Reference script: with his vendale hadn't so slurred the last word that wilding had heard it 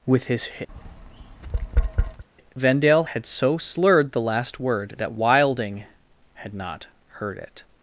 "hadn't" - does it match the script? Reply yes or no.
no